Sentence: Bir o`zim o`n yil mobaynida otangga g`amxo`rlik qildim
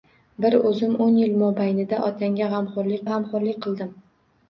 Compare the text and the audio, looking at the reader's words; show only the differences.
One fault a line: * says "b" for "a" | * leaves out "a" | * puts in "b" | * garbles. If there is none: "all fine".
* puts in "g`amxo`rlik"